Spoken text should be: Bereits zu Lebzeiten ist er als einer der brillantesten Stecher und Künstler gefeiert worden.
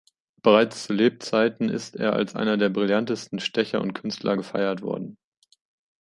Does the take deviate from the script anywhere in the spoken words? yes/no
no